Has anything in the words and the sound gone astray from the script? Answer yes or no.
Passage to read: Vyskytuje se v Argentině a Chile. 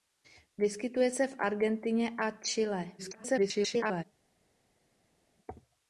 yes